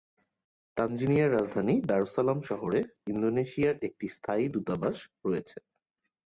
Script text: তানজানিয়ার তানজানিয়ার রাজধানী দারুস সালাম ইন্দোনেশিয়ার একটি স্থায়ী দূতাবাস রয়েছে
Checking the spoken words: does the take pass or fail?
fail